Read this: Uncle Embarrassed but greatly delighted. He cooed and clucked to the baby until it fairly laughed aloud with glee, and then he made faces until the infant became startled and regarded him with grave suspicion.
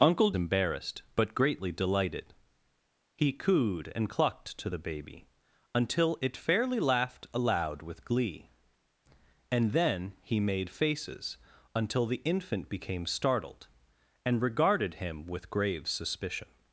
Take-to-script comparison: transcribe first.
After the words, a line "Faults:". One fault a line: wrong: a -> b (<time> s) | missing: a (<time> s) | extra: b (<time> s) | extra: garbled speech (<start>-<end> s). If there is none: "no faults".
Uncle Embarrassed but greatly delighted. He cooed and clucked to the baby until it fairly laughed aloud with glee, and then he made faces until the infant became startled and regarded him with grave suspicion.
Faults:
no faults